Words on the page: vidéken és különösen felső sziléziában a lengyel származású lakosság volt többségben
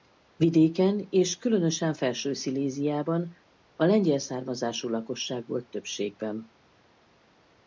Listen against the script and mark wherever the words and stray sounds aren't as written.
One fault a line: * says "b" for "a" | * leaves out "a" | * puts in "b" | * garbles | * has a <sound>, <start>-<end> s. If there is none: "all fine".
all fine